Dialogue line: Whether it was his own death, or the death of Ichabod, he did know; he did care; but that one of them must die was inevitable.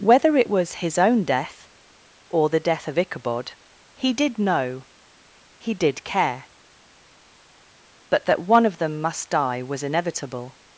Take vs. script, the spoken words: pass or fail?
pass